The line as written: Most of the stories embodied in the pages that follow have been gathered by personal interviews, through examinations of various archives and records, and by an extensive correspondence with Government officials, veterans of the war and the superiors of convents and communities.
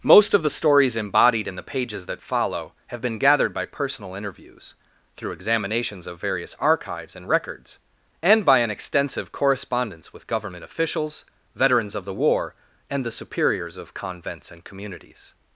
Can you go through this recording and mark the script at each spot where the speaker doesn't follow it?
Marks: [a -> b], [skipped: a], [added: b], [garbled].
Most of the stories embodied in the pages that follow have been gathered by personal interviews, through examinations of various archives and records, and by an extensive correspondence with Government officials, veterans of the war and the superiors of convents and communities.